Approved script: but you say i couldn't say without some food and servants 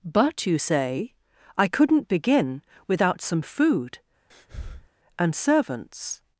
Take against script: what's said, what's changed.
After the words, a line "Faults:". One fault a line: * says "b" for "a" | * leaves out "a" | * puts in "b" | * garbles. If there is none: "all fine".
but you say i couldn't begin without some food and servants
Faults:
* says "begin" for "say"